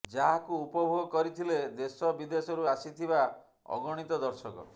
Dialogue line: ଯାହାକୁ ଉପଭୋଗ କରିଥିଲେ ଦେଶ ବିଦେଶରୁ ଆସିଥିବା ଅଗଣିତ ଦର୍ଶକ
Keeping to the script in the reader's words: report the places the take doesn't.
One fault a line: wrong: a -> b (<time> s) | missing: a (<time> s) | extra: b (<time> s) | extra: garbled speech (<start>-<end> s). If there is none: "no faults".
no faults